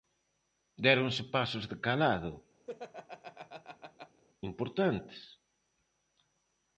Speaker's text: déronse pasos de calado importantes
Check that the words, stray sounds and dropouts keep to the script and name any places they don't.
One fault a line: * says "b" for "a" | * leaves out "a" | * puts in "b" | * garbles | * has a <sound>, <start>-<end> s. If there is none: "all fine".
* has a laugh, 2.7-4.2 s